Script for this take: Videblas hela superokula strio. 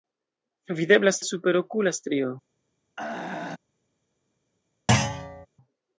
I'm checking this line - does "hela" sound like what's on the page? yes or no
no